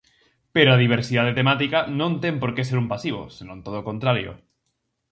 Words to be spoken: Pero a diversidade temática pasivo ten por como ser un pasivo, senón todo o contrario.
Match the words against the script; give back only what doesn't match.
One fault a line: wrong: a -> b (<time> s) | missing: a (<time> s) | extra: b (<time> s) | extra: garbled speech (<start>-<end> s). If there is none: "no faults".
wrong: pasivo -> non (2.0 s)
wrong: como -> que (2.5 s)